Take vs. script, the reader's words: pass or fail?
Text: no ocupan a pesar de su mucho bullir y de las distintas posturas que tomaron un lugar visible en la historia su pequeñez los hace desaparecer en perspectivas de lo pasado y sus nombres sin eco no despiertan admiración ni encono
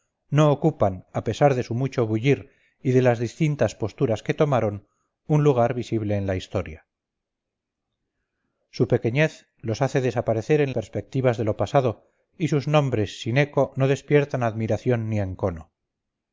pass